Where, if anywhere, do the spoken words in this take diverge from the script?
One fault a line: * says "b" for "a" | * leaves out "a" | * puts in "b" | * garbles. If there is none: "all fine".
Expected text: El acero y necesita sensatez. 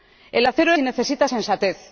all fine